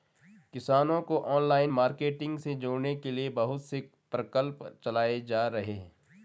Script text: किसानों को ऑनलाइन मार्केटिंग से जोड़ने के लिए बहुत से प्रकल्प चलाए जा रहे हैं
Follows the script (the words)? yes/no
yes